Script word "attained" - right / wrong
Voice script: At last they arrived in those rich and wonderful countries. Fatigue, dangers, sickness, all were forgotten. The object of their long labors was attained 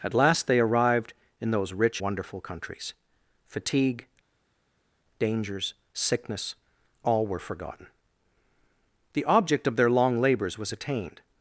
right